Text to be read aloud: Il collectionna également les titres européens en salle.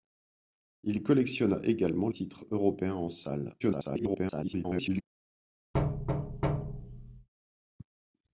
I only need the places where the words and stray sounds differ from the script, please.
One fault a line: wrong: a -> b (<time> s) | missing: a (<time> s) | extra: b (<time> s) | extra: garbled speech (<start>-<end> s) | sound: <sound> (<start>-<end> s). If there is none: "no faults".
missing: les (2.1 s)
extra: garbled speech (3.6-5.0 s)
sound: thud (5.7-7.3 s)